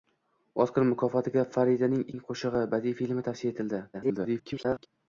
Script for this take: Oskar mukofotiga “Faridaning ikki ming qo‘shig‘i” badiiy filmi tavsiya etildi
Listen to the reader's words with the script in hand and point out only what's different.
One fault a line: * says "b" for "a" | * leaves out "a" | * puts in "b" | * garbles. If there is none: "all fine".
* leaves out "ikki"
* garbles